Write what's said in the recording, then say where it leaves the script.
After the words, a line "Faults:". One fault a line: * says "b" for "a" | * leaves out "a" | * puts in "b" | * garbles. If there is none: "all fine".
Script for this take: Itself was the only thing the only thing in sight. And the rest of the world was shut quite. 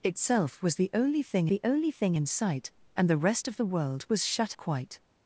Itself was the only thing the only thing in sight. And the rest of the world was shut quite.
Faults:
all fine